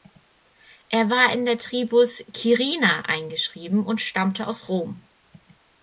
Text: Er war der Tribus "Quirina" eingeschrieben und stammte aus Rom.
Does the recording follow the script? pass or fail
fail